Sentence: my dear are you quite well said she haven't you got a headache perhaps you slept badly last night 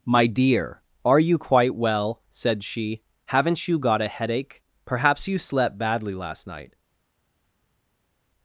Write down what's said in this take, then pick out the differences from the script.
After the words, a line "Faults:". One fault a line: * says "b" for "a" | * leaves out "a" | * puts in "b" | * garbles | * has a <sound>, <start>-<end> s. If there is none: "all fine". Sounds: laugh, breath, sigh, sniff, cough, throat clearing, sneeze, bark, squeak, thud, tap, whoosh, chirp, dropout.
my dear are you quite well said she haven't you got a headache perhaps you slept badly last night
Faults:
all fine